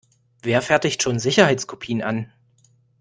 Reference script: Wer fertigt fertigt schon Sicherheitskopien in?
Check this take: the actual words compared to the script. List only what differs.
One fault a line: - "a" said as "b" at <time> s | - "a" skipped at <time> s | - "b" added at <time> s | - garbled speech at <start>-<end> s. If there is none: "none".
- "fertigt" skipped at 1.0 s
- "in" said as "an" at 2.0 s